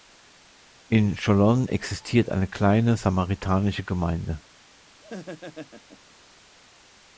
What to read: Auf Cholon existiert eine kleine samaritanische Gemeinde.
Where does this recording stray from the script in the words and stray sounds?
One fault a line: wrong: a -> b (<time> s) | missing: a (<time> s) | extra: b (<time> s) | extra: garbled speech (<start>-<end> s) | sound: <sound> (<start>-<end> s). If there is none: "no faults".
wrong: Auf -> In (0.9 s)
sound: laugh (5.0-6.1 s)